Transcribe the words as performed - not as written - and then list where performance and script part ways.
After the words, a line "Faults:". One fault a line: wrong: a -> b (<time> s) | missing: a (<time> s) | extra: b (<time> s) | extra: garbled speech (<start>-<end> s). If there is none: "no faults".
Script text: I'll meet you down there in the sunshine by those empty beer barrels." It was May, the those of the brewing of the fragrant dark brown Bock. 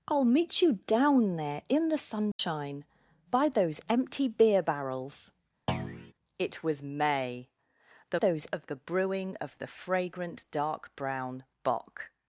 I'll meet you down there in the sunshine by those empty beer barrels." It was May, the those of the brewing of the fragrant dark brown Bock.
Faults:
no faults